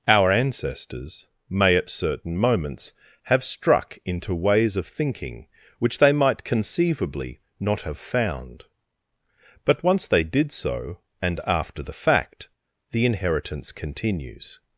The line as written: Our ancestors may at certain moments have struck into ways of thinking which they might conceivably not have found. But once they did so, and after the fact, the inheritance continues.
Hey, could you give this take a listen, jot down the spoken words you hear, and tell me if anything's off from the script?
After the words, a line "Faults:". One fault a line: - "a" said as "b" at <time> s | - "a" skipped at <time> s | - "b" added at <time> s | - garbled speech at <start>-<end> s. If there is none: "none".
Our ancestors may at certain moments have struck into ways of thinking which they might conceivably not have found. But once they did so, and after the fact, the inheritance continues.
Faults:
none